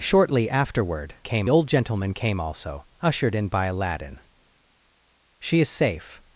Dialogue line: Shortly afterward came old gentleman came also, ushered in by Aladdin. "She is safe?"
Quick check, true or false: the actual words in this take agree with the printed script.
true